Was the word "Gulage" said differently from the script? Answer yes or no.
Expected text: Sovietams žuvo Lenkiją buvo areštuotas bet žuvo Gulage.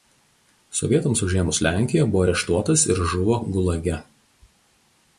no